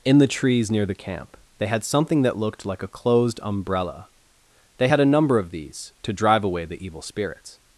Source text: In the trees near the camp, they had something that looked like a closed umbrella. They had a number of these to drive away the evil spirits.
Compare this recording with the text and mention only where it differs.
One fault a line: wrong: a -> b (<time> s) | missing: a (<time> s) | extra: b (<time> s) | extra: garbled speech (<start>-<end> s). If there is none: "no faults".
no faults